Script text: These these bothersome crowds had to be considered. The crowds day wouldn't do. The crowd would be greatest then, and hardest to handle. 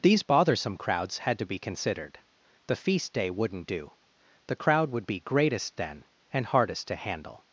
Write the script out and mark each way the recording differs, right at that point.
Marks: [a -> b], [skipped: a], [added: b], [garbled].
These [skipped: these] bothersome crowds had to be considered. The [crowds -> feast] day wouldn't do. The crowd would be greatest then, and hardest to handle.